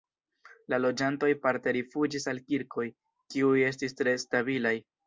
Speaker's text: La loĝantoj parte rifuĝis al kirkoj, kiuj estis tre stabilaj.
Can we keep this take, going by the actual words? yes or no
yes